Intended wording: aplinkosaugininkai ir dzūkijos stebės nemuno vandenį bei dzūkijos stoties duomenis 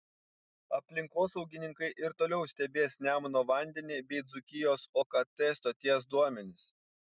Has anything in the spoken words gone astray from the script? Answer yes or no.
yes